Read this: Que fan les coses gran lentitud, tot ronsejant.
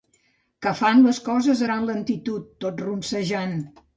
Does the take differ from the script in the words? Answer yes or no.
no